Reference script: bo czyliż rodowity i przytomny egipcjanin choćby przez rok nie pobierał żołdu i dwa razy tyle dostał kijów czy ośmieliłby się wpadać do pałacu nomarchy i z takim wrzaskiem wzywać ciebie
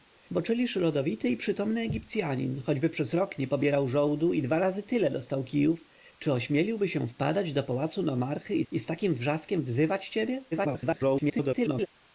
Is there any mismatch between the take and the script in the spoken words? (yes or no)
yes